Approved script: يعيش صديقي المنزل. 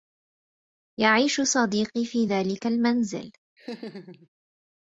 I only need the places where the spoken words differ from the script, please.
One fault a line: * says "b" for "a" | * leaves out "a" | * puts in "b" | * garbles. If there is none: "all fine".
* puts in "في ذلك"